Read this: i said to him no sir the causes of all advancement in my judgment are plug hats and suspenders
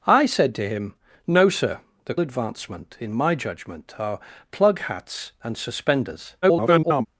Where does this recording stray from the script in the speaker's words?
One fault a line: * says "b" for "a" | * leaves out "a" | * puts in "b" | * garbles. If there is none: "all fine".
* leaves out "causes of all"
* garbles